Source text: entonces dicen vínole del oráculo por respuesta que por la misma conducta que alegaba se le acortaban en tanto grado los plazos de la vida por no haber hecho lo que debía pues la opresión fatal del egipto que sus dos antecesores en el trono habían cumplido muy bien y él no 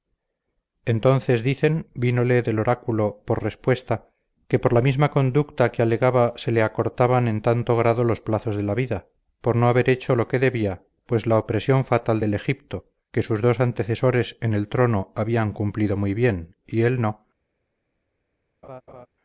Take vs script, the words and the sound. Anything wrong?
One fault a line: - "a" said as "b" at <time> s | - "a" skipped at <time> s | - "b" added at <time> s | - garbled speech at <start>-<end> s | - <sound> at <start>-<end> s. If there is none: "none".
- laugh at 18.6-19.1 s